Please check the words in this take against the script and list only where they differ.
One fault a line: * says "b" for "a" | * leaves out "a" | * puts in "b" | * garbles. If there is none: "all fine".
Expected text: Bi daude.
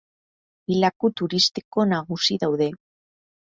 * puts in "laku turistiko nagusi"